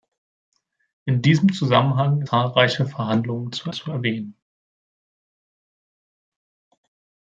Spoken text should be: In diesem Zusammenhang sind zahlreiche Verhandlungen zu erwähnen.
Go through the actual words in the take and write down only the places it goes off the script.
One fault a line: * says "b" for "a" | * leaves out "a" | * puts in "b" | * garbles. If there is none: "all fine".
* leaves out "sind"
* puts in "zu"